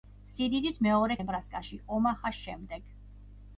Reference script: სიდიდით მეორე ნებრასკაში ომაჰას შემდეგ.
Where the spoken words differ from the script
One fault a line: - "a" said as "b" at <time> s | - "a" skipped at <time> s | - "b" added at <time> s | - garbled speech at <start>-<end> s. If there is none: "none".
none